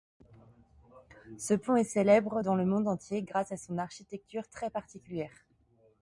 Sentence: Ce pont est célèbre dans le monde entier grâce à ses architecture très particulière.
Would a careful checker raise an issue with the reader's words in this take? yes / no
yes